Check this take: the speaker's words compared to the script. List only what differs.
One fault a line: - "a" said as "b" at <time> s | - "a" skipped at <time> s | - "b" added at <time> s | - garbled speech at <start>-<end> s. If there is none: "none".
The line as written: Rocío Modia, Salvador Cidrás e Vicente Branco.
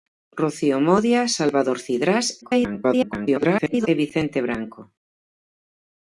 - garbled speech at 2.4-3.9 s